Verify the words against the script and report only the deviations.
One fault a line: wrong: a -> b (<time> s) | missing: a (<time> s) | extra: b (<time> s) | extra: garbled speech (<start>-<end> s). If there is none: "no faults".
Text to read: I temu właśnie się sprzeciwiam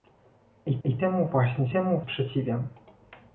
extra: I (0.8 s)
wrong: się -> temu (1.7 s)